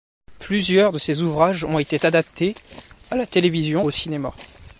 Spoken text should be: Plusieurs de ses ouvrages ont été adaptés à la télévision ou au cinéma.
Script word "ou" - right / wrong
wrong